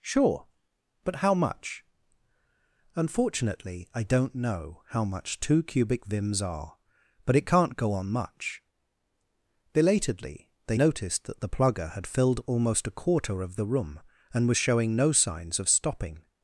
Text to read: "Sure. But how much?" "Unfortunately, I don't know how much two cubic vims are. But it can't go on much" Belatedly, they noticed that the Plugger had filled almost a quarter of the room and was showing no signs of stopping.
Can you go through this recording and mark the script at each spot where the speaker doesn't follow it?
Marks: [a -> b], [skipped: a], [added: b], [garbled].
"Sure. But how much?" "Unfortunately, I don't know how much two cubic vims are. But it can't go on much" Belatedly, they noticed that the Plugger had filled almost a quarter of the room and was showing no signs of stopping.